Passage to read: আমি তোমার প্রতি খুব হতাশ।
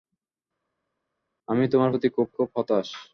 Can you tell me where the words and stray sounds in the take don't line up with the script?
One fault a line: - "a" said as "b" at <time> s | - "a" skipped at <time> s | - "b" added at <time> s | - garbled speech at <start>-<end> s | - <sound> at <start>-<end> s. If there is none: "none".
- "খুব" added at 2.3 s